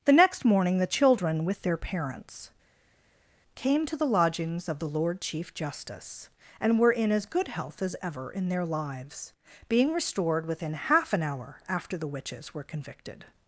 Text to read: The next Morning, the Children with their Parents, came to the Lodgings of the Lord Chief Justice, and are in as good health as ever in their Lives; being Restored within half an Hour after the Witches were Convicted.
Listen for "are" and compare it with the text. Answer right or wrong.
wrong